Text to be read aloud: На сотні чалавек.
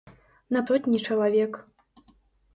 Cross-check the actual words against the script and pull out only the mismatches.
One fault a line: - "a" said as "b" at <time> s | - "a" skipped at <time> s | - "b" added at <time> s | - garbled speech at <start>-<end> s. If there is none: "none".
none